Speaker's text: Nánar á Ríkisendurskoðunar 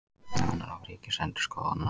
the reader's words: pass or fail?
pass